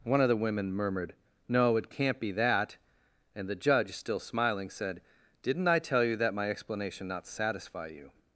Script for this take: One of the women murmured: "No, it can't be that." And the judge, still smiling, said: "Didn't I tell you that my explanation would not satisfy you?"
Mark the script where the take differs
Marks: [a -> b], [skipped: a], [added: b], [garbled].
One of the women murmured: "No, it can't be that." And the judge, still smiling, said: "Didn't I tell you that my explanation [skipped: would] not satisfy you?"